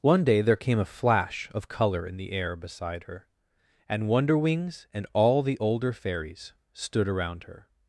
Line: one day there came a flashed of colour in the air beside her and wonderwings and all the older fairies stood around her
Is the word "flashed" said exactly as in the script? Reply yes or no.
no